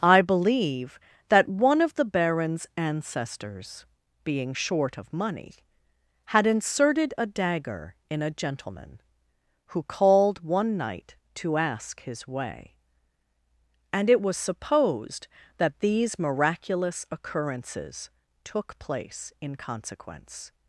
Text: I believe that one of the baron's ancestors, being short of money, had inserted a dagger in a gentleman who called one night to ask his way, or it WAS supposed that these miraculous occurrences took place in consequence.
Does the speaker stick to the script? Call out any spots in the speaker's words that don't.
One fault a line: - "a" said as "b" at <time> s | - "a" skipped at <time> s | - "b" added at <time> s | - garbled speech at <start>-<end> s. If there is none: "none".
- "or" said as "and" at 13.9 s